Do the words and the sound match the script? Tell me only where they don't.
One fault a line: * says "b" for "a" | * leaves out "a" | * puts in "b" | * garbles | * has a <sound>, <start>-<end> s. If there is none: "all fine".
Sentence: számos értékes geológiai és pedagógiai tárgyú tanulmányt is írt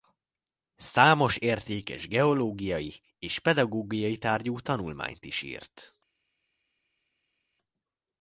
all fine